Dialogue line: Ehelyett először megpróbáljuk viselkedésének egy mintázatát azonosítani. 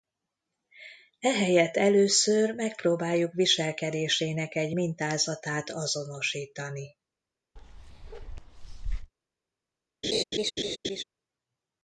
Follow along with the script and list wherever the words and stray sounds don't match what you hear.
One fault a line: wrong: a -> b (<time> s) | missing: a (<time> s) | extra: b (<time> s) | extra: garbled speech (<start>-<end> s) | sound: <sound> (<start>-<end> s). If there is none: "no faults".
sound: bark (7.6-9.1 s)
sound: laugh (10.0-11.0 s)